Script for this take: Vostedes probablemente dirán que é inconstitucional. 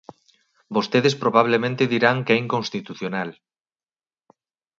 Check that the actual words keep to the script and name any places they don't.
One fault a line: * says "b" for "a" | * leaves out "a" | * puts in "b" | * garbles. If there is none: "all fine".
all fine